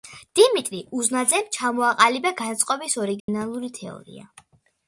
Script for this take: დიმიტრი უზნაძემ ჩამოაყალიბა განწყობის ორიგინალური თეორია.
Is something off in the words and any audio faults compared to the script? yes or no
yes